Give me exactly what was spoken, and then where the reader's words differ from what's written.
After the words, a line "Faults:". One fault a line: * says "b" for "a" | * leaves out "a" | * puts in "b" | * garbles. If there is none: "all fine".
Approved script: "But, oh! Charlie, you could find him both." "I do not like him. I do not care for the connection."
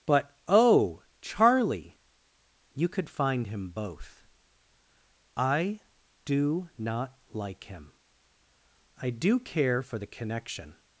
"But, oh! Charlie, you could find him both." "I do not like him. I do care for the connection."
Faults:
* leaves out "not"